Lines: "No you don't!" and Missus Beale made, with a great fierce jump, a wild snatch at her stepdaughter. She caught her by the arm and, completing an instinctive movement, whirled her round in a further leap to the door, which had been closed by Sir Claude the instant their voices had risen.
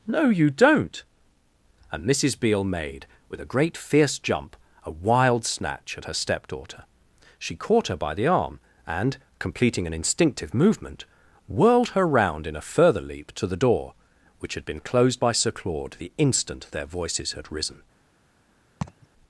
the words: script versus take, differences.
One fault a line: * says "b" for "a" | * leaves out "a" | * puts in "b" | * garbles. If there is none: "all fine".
all fine